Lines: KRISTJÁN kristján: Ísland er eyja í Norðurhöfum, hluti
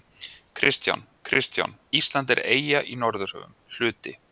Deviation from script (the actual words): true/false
false